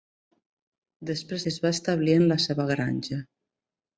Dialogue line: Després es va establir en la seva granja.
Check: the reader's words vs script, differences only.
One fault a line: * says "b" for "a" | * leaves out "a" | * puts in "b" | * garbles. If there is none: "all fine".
all fine